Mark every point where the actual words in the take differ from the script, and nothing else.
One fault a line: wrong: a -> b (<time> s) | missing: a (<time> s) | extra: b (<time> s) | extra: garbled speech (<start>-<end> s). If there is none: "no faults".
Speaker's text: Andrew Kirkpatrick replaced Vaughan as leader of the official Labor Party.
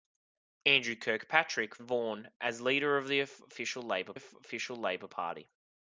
missing: replaced (1.8 s)
extra: official Labor (4.1 s)